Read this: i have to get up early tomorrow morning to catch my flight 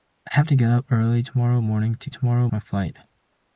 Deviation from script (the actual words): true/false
true